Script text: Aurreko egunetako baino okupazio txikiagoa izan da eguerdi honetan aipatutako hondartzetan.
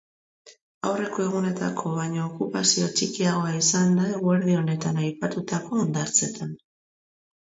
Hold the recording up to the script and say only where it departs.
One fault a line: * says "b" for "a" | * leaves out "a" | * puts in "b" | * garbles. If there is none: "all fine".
all fine